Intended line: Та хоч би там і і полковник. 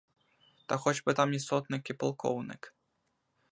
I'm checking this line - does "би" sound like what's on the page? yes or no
yes